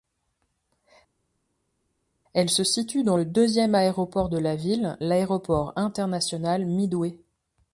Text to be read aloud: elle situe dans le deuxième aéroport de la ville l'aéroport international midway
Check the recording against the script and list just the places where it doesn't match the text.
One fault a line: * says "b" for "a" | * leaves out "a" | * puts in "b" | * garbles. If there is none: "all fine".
* puts in "se"